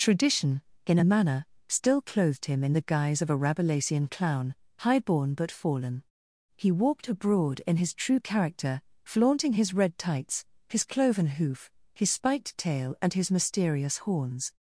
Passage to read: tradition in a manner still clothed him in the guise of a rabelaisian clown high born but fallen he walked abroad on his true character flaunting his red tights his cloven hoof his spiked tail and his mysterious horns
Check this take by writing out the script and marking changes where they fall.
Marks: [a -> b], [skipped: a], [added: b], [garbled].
tradition in a manner still clothed him in the guise of a rabelaisian clown high born but fallen he walked abroad [on -> in] his true character flaunting his red tights his cloven hoof his spiked tail and his mysterious horns